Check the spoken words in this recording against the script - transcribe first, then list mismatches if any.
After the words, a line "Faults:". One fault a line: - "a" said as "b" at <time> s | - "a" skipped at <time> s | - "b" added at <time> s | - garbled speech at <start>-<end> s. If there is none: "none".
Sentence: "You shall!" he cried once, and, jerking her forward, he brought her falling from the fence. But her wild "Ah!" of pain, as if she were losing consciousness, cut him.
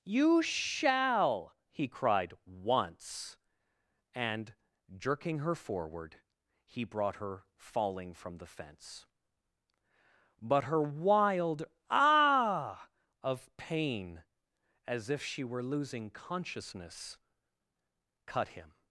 "You shall!" he cried once, and, jerking her forward, he brought her falling from the fence. But her wild "Ah!" of pain, as if she were losing consciousness, cut him.
Faults:
none